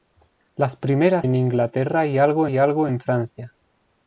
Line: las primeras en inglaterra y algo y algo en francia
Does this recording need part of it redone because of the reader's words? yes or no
no